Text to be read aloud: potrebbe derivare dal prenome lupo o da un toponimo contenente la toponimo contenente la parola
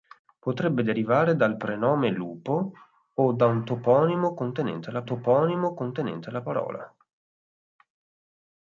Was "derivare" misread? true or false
false